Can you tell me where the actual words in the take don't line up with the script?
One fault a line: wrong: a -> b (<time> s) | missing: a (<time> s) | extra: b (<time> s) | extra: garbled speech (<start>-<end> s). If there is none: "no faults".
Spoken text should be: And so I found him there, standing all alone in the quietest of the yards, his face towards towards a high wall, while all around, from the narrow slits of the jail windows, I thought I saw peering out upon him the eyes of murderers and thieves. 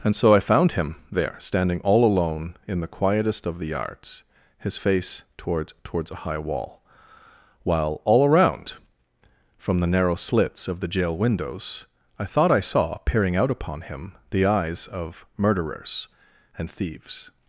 no faults